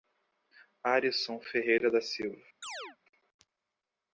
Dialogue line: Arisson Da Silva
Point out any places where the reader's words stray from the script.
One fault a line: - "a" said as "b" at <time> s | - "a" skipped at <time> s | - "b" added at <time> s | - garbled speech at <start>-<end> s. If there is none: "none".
- "Ferreira" added at 1.4 s